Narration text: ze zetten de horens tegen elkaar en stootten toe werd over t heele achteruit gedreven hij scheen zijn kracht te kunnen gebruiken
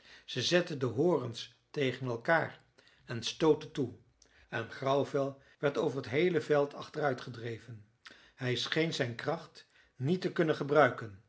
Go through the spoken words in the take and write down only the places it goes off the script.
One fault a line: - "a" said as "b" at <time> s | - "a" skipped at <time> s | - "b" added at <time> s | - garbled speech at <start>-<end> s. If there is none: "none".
- "en grauwvel" added at 4.5 s
- "veld" added at 6.4 s
- "niet" added at 10.0 s